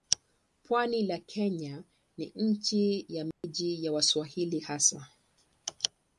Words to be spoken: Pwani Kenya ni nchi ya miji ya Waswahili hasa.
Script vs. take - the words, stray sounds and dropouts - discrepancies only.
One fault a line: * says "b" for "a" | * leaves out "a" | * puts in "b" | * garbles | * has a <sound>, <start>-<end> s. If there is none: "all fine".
* puts in "la"
* has a dropout, 3.3-3.4 s